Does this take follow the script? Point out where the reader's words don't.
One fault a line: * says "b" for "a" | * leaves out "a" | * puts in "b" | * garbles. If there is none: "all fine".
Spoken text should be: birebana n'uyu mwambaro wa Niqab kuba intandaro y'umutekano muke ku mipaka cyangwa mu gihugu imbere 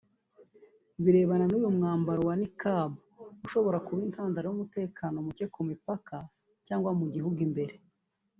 * puts in "ushobora"